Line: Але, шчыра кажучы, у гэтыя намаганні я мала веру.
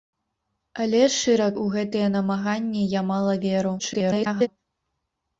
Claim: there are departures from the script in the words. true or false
true